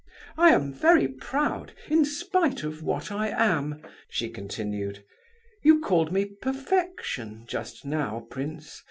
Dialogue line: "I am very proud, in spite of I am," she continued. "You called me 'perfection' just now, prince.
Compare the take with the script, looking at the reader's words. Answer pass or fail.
fail